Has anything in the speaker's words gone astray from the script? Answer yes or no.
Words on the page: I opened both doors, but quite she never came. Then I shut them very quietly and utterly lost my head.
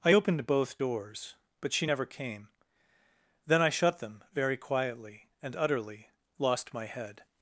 yes